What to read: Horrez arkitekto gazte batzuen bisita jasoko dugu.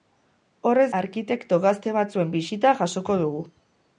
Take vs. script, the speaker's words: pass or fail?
pass